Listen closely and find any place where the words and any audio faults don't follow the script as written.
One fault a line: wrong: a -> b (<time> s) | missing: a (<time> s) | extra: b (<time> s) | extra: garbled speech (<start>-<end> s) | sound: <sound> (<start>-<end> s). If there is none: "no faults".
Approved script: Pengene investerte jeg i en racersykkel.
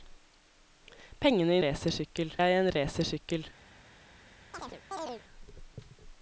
wrong: investerte -> racersykkel (1.6 s)
sound: chirp (4.5-5.2 s)